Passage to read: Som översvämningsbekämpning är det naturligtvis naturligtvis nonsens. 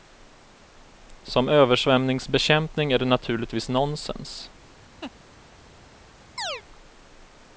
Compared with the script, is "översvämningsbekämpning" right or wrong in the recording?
right